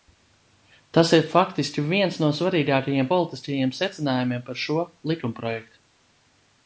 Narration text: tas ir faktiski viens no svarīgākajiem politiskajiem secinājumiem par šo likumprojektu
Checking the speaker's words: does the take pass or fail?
pass